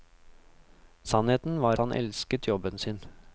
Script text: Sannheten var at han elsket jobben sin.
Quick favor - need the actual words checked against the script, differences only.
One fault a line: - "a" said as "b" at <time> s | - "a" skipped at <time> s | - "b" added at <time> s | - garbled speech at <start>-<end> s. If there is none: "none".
- "at" skipped at 1.8 s